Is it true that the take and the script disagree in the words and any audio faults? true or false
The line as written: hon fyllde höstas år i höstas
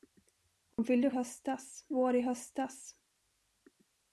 true